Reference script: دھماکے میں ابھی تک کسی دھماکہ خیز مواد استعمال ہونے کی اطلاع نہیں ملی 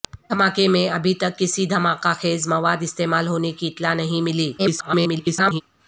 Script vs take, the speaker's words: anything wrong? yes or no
yes